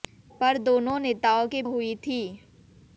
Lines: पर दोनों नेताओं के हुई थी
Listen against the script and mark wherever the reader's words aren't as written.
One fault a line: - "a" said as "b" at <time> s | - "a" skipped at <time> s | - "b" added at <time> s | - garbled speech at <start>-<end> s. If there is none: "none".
none